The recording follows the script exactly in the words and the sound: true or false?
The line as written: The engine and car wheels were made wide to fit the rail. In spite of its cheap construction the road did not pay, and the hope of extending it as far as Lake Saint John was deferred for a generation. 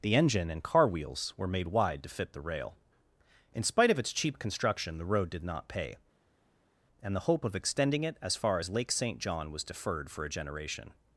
true